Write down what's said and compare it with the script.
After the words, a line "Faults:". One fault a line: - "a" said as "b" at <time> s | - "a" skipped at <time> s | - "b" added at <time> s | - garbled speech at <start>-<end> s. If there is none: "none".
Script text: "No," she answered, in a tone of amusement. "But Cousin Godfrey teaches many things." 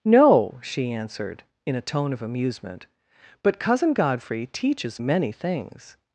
"No," she answered, in a tone of amusement. "But Cousin Godfrey teaches many things."
Faults:
none